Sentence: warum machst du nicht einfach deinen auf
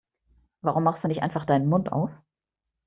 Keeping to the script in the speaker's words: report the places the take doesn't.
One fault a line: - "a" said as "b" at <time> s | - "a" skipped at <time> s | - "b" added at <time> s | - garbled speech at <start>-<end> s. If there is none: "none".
- "mund" added at 1.7 s